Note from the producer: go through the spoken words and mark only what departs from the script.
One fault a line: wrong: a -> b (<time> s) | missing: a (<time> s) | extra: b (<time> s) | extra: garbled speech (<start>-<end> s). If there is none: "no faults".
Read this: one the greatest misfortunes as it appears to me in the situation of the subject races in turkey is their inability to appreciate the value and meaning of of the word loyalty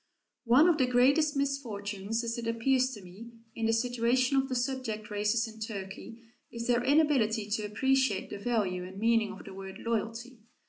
extra: of (0.7 s)
missing: of (9.4 s)